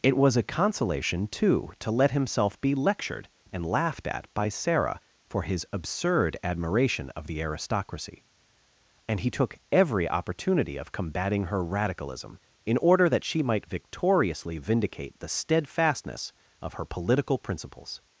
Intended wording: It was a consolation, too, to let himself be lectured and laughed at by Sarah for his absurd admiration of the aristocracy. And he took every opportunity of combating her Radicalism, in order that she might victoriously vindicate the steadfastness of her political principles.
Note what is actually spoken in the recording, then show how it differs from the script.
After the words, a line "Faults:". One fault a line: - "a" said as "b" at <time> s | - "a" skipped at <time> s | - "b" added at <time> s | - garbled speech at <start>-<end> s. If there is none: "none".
It was a consolation, too, to let himself be lectured and laughed at by Sarah for his absurd admiration of the aristocracy. And he took every opportunity of combating her Radicalism, in order that she might victoriously vindicate the steadfastness of her political principles.
Faults:
none